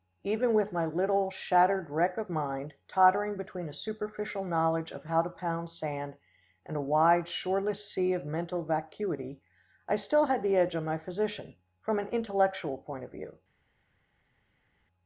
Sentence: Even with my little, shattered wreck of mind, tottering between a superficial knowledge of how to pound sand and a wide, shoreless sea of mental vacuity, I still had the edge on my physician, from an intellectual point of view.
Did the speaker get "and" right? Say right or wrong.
right